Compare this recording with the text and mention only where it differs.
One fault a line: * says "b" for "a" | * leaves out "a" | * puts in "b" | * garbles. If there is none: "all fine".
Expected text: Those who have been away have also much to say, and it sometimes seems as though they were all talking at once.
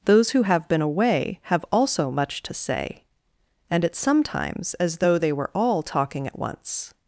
* leaves out "seems"